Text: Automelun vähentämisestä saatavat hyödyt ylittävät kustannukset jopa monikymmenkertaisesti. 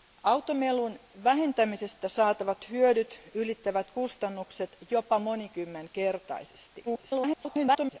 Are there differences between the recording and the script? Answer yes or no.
yes